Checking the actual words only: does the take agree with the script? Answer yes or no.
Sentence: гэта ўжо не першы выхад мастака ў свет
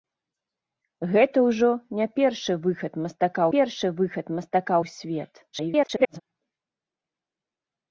no